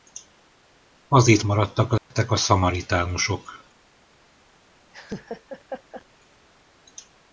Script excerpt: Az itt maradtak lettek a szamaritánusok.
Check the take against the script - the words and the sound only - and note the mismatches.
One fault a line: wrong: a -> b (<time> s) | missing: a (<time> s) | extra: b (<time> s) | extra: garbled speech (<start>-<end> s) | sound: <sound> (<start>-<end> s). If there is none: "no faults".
sound: dropout (2.0-2.1 s)
sound: laugh (4.9-6.1 s)